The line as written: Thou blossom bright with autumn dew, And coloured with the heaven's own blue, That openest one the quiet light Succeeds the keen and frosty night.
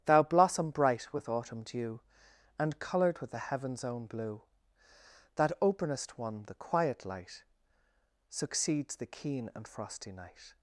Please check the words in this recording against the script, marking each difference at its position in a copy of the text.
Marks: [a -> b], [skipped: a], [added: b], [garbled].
Thou blossom bright with autumn dew, And coloured with the heaven's own blue, That openest one the quiet light Succeeds the keen and frosty night.